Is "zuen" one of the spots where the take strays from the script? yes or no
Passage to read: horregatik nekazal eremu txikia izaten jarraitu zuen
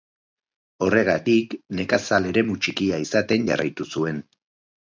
no